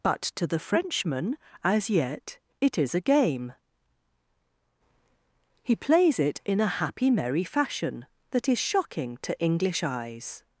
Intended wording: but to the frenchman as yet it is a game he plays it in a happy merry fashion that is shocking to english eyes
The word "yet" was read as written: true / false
true